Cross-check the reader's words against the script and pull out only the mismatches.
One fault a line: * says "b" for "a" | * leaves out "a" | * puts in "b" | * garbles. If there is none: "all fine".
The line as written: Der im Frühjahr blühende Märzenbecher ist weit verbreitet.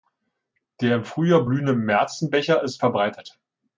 * leaves out "weit"